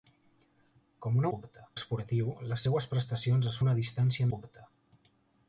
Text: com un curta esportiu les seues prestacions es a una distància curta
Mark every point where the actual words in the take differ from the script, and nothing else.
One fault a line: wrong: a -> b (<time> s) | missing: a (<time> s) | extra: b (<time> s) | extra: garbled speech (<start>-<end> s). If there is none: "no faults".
no faults